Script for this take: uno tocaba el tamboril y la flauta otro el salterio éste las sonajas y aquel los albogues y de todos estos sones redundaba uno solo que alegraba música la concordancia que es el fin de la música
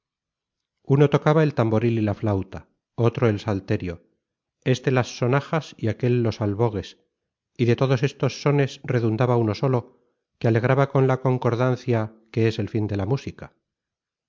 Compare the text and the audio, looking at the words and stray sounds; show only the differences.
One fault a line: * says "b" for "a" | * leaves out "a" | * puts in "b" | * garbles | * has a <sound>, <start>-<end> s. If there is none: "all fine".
* says "con" for "música"